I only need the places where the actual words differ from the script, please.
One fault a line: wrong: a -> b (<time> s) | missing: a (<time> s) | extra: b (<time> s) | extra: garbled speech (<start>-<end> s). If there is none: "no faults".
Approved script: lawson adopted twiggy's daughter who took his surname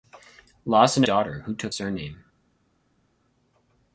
missing: adopted twiggy's (1.0 s)
missing: his (1.7 s)